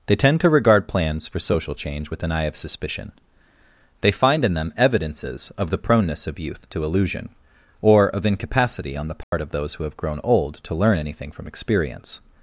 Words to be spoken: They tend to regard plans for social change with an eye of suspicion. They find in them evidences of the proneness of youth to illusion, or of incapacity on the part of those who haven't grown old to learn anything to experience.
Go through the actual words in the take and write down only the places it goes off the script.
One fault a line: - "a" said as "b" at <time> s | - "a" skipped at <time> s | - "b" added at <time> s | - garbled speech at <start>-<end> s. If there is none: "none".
- "haven't" said as "have" at 9.8 s
- "to" said as "from" at 11.3 s